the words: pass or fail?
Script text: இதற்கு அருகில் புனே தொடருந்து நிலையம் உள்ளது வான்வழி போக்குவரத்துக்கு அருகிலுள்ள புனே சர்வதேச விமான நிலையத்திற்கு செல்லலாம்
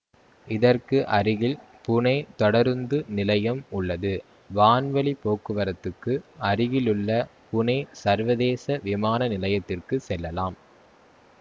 pass